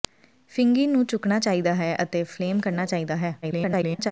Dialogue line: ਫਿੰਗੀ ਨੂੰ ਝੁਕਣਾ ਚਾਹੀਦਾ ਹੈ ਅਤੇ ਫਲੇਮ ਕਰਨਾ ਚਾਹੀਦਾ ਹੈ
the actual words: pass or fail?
fail